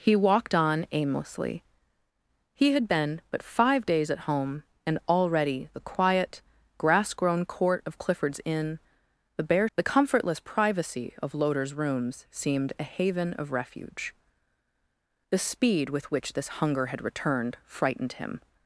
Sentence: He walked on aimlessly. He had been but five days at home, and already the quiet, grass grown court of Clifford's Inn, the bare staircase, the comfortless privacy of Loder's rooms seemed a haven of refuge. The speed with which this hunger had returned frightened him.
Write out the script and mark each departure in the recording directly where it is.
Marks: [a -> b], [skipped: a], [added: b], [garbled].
He walked on aimlessly. He had been but five days at home, and already the quiet, grass grown court of Clifford's Inn, the bare [skipped: staircase,] the comfortless privacy of Loder's rooms seemed a haven of refuge. The speed with which this hunger had returned frightened him.